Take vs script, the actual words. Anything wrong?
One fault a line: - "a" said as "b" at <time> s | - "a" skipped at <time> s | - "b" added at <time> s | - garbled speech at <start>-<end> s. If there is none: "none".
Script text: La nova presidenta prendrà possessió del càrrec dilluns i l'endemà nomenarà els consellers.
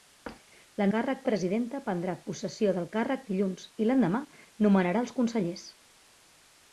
- "nova" said as "càrrec" at 0.9 s